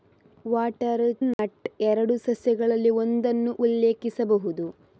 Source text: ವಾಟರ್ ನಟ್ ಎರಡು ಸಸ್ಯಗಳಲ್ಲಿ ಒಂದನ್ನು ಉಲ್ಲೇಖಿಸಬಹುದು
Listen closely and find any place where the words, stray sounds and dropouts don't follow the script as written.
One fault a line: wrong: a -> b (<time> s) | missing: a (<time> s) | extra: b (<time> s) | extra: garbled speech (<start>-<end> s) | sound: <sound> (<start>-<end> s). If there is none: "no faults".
sound: dropout (1.3-1.4 s)